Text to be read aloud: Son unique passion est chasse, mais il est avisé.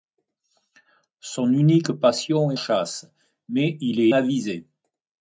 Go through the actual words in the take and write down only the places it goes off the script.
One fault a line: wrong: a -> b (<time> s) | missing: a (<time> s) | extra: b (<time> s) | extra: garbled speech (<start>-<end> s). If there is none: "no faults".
no faults